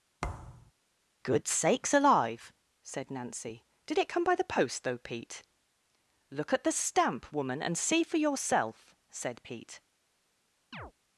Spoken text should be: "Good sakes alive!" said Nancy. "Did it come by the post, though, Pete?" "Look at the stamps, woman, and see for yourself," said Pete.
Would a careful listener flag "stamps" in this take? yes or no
yes